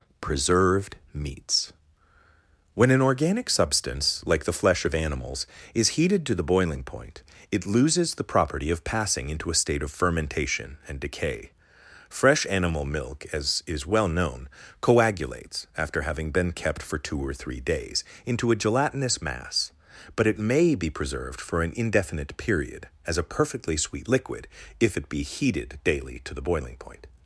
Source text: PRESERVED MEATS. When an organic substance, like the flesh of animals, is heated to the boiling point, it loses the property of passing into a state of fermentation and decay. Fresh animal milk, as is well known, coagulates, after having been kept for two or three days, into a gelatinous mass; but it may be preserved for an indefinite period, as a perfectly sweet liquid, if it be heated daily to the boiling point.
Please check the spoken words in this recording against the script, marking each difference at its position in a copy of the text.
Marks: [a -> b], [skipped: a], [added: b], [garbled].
PRESERVED MEATS. When an organic substance, like the flesh of animals, is heated to the boiling point, it loses the property of passing into a state of fermentation and decay. Fresh animal milk, as is well known, coagulates, after having been kept for two or three days, into a gelatinous mass; but it may be preserved for an indefinite period, as a perfectly sweet liquid, if it be heated daily to the boiling point.